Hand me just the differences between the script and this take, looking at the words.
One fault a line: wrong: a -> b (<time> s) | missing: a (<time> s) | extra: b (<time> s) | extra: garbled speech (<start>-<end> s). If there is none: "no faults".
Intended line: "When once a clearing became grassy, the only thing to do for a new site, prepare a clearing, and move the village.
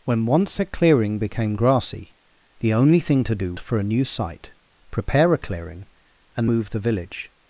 no faults